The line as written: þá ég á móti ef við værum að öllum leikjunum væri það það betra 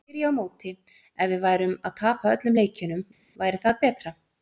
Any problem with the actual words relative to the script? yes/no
yes